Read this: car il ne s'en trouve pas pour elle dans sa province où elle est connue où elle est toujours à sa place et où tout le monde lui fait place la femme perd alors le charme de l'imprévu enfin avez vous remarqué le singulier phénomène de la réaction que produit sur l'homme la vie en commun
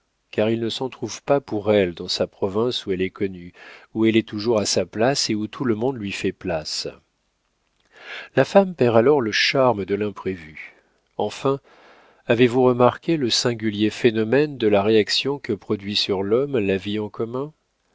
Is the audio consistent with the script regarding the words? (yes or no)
yes